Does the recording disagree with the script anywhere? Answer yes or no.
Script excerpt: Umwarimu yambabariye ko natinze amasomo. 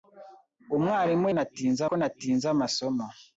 yes